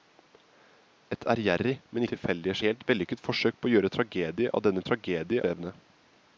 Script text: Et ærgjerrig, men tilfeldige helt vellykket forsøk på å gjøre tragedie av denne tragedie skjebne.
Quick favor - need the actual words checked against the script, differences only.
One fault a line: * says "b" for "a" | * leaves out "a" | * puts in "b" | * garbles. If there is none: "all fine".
all fine